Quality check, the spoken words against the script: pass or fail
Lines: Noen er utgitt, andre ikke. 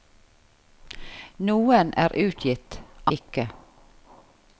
fail